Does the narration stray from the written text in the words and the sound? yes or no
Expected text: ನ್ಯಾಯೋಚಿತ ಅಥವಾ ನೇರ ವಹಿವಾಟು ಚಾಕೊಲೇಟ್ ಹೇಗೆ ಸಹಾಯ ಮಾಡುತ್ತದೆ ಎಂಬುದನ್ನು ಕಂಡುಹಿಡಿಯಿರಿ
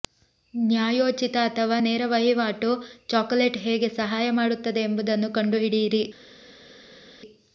no